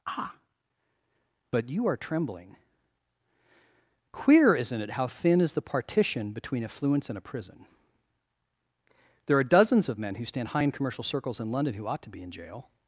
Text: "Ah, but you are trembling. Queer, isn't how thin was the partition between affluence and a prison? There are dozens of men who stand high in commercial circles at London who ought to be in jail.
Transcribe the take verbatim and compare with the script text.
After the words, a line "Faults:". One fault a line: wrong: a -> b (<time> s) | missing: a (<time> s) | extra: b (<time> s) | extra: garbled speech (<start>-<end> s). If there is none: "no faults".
"Ah, but you are trembling. Queer, isn't it, how thin is the partition between affluence and a prison? There are dozens of men who stand high in commercial circles in London who ought to be in jail.
Faults:
extra: it (4.8 s)
wrong: was -> is (5.4 s)
wrong: at -> in (11.4 s)